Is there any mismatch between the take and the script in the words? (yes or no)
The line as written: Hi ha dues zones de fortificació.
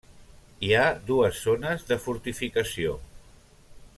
no